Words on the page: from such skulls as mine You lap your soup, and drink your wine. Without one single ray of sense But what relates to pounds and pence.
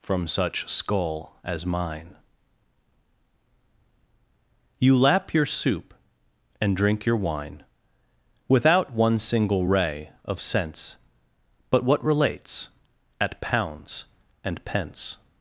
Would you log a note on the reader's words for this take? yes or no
yes